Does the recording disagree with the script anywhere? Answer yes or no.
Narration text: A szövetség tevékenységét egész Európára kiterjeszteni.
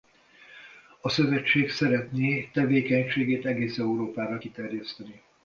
yes